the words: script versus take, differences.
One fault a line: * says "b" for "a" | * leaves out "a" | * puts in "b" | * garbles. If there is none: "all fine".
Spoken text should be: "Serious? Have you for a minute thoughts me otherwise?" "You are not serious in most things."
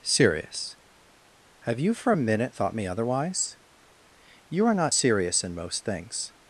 * says "thought" for "thoughts"